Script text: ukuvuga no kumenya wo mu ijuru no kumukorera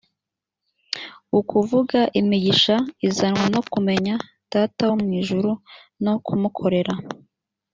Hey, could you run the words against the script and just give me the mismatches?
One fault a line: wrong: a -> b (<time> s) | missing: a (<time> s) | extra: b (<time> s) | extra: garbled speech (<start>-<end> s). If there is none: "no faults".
extra: imigisha izanwa (2.2 s)
extra: data (4.5 s)